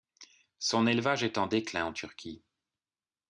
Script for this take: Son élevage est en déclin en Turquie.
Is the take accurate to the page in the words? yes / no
yes